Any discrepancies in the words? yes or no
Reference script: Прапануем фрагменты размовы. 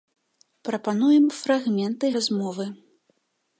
no